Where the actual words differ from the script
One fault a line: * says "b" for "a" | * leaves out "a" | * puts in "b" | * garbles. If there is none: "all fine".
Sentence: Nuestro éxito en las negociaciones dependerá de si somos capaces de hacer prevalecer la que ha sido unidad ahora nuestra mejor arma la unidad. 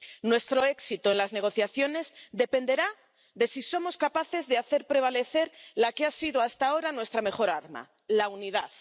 * says "hasta" for "unidad"